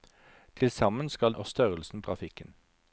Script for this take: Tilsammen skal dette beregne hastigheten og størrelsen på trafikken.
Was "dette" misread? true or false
true